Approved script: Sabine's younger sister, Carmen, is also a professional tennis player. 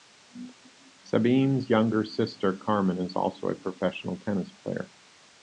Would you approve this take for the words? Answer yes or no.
yes